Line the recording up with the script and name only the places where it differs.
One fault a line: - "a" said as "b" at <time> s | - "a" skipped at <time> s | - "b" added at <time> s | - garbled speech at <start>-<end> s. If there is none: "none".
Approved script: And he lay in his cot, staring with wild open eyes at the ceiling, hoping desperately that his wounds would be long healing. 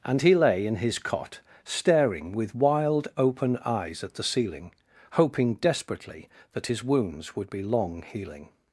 none